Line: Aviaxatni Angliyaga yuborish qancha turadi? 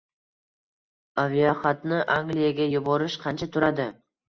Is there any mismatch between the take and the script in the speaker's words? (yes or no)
no